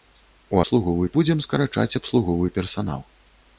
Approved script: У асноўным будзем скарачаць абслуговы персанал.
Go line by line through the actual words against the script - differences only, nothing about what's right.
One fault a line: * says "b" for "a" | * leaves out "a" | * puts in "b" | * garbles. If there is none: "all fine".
* says "абслуговы" for "асноўным"